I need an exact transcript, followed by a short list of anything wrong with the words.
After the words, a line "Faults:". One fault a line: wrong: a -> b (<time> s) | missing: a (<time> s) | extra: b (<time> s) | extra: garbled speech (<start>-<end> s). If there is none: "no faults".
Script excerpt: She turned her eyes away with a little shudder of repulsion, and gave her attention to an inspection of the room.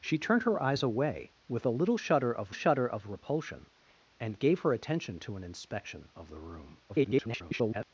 She turned her eyes away with a little shudder of shudder of repulsion, and gave her attention to an inspection of the room. [garbled]
Faults:
extra: shudder of (2.5 s)
extra: garbled speech (6.9-7.9 s)